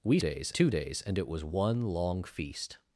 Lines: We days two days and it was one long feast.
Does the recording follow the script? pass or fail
pass